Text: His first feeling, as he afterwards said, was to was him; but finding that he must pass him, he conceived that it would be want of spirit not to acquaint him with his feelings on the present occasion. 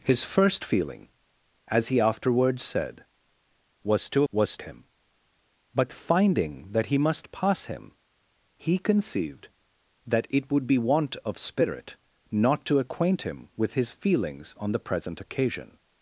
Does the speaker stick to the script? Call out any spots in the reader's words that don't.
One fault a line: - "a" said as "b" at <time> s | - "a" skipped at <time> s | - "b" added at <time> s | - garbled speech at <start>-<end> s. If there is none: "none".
none